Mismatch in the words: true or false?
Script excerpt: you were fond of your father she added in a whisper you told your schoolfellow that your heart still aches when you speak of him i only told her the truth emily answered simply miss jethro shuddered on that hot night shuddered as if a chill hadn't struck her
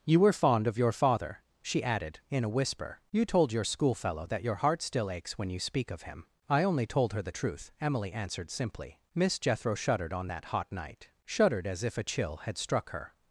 true